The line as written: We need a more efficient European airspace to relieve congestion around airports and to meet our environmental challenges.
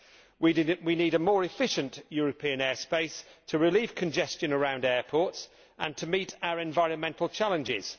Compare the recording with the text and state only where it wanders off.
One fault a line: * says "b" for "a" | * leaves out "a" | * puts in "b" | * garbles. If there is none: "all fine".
all fine